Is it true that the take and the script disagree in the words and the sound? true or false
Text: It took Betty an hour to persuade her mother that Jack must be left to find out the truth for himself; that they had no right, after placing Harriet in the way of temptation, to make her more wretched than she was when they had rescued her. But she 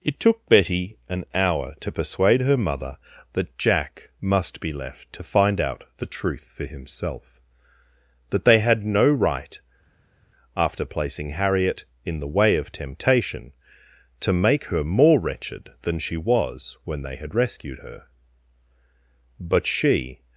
false